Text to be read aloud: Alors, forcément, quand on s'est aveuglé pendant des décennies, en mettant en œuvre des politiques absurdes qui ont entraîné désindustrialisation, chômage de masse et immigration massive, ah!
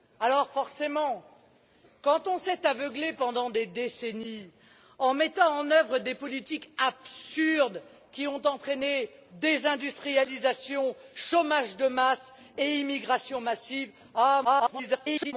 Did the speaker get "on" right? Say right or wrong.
right